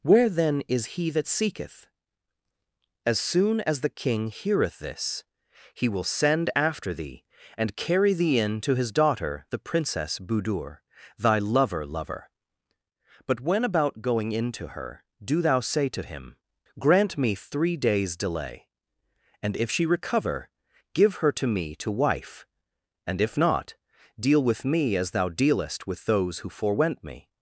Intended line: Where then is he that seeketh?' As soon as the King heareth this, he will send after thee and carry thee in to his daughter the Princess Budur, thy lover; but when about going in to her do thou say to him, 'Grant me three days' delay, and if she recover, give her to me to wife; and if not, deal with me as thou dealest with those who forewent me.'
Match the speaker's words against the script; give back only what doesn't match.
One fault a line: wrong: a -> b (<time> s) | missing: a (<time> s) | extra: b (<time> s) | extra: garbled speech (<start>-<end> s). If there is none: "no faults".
extra: lover (11.9 s)